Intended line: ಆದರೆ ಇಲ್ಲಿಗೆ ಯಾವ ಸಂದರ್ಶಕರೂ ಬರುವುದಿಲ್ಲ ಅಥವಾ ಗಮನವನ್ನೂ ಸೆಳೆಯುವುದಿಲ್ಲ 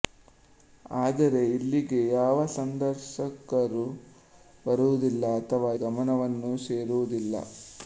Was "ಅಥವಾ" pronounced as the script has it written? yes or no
yes